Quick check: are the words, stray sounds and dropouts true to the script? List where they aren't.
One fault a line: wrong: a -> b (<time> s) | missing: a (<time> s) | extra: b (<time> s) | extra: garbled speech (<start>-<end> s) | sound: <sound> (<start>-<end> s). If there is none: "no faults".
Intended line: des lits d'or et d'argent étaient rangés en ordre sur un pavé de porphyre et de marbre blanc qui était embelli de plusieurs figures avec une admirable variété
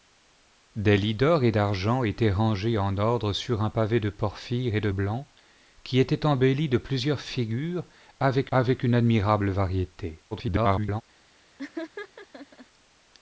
missing: marbre (4.9 s)
extra: avec (8.5 s)
extra: garbled speech (10.3-11.0 s)
sound: laugh (11.6-12.7 s)